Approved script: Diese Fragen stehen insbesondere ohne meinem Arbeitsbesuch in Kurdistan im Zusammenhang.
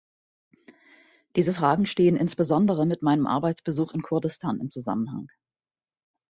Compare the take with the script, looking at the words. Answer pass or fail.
fail